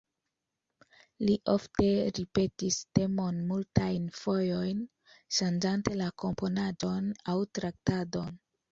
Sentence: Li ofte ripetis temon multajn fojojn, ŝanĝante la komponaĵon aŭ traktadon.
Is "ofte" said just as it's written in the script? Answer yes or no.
yes